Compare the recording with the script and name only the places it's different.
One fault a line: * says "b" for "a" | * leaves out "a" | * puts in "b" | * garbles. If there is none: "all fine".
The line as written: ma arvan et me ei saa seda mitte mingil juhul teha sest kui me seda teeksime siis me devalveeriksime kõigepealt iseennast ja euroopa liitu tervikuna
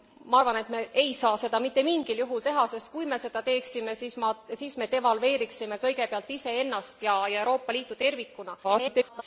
* garbles